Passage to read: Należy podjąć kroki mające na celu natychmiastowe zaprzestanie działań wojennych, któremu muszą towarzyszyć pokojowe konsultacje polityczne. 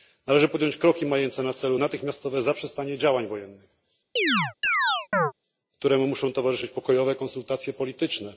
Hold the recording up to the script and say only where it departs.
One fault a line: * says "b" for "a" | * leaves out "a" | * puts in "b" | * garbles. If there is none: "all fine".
all fine